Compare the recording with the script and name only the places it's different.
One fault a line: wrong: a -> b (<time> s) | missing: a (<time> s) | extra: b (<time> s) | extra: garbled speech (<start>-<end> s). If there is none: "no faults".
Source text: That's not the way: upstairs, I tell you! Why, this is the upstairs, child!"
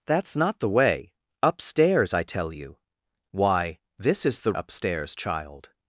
no faults